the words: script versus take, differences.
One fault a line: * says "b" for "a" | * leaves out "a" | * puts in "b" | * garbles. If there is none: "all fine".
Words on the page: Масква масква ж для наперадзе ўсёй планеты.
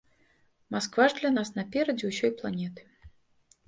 * leaves out "масква"
* puts in "нас"